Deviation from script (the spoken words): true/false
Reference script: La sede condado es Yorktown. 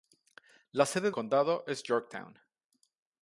false